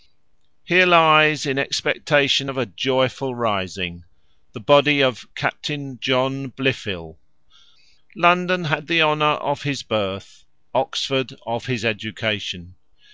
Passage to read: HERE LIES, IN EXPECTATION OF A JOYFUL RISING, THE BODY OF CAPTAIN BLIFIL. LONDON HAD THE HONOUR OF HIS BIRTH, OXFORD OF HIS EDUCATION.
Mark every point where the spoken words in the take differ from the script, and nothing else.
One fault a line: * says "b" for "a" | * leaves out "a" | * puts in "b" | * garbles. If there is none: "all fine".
* puts in "JOHN"